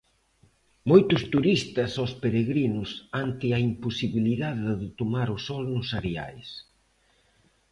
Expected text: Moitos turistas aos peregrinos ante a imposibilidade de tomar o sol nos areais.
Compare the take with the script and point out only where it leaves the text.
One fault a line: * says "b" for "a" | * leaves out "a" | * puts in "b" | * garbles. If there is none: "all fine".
all fine